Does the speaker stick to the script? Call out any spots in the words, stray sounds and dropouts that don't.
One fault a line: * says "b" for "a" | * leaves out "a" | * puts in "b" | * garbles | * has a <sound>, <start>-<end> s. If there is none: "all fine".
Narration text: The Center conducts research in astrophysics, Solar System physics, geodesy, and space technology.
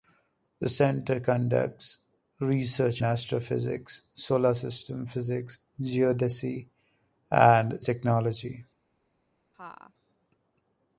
* leaves out "in"
* leaves out "space"
* has a laugh, 9.5-9.9 s